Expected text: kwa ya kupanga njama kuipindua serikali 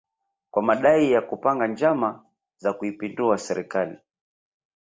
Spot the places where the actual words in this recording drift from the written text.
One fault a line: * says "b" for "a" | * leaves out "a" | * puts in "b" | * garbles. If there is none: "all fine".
* puts in "madai"
* puts in "za"